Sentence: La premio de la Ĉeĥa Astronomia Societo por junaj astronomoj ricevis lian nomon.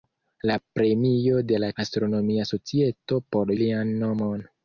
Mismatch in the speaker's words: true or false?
true